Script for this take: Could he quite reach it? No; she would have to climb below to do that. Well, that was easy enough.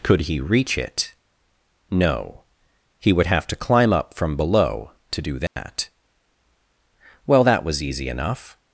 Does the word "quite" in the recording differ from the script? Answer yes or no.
yes